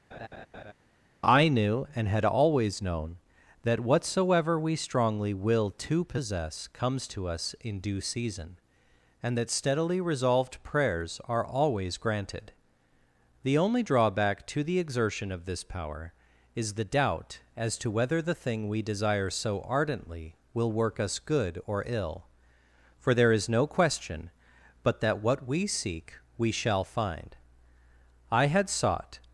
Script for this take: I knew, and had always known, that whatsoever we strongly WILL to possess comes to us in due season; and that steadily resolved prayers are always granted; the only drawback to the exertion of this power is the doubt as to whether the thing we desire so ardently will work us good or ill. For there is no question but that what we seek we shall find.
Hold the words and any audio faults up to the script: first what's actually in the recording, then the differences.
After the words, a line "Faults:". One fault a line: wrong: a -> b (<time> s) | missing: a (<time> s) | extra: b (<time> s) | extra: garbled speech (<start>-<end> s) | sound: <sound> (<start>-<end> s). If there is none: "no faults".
I knew, and had always known, that whatsoever we strongly WILL to possess comes to us in due season; and that steadily resolved prayers are always granted; the only drawback to the exertion of this power is the doubt as to whether the thing we desire so ardently will work us good or ill. For there is no question but that what we seek we shall find. I had sought
Faults:
sound: laugh (0.1-0.7 s)
extra: I had sought (28.3 s)